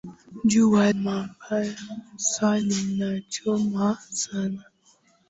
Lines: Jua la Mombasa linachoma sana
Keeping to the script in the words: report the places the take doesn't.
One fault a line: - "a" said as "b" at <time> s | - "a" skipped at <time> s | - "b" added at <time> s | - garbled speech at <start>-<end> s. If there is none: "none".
- "la" skipped at 0.9 s